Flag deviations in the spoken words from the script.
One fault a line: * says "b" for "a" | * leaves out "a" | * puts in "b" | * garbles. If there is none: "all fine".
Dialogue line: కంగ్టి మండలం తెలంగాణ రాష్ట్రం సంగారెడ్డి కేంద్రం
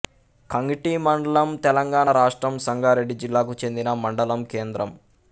* puts in "జిల్లాకు చెందిన మండలం"